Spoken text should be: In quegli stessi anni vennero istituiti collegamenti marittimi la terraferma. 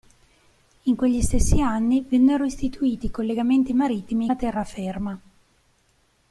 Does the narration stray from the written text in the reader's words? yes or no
no